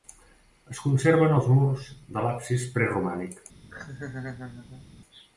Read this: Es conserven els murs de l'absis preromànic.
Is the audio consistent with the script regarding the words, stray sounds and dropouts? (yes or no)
no